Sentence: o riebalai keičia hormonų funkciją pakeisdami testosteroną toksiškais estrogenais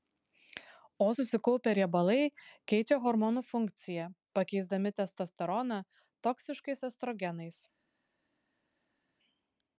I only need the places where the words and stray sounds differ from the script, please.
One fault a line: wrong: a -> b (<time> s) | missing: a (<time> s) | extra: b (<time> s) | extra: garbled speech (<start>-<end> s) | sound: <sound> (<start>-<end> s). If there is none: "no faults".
extra: susikaupę (1.2 s)